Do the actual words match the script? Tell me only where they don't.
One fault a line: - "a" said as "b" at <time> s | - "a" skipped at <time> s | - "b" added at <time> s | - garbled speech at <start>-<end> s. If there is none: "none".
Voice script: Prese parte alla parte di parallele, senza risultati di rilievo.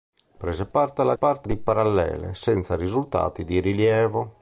none